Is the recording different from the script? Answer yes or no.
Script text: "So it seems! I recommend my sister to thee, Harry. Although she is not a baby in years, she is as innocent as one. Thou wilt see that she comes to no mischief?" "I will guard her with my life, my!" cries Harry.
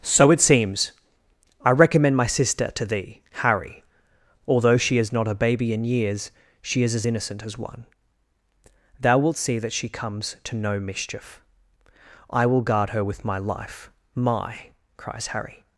no